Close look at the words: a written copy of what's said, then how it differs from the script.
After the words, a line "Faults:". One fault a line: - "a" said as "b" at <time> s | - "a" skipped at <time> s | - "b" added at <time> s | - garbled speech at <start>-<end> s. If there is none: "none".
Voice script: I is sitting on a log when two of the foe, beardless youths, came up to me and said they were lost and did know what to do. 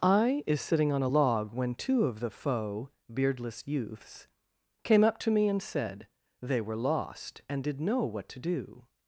I is sitting on a log when two of the foe, beardless youths, came up to me and said they were lost and did know what to do.
Faults:
none